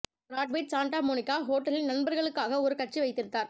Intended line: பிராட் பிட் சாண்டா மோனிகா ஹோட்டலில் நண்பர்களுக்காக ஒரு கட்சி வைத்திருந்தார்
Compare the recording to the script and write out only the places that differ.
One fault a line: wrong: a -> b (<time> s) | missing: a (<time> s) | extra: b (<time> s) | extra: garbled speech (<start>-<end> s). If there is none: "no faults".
no faults